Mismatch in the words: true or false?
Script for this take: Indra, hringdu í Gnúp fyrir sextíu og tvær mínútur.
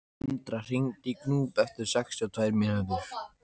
true